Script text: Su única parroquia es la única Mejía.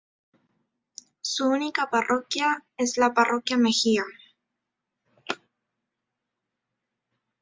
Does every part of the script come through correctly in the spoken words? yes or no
no